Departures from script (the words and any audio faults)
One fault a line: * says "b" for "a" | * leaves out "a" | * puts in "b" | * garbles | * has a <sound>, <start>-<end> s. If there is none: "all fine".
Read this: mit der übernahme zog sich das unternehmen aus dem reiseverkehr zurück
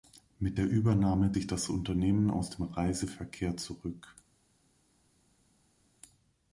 * leaves out "zog"